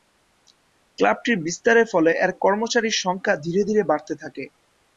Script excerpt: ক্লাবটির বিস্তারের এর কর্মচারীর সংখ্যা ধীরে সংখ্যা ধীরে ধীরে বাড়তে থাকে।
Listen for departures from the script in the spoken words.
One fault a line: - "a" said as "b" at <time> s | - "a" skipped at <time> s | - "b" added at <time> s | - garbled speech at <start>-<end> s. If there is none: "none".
- "ফলে" added at 1.9 s
- "সংখ্যা ধীরে" skipped at 3.6 s